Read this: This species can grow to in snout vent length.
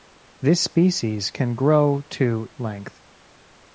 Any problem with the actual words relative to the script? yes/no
yes